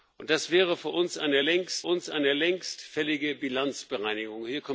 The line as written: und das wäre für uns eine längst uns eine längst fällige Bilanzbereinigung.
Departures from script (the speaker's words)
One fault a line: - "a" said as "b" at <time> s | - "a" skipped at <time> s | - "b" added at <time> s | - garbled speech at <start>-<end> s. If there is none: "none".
none